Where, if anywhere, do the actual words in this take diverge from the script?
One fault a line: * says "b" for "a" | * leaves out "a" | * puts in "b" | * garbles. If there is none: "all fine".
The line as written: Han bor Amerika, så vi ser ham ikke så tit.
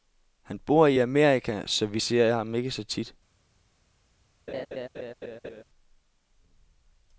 * puts in "i"